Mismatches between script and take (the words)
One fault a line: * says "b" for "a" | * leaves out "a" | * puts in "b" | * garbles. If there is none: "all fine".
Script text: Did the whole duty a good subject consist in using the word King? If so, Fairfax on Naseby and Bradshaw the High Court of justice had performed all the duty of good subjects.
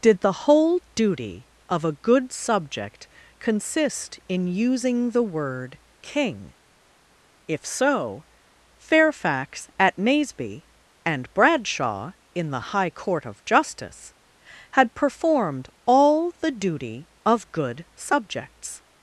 * puts in "of"
* says "at" for "on"
* puts in "in"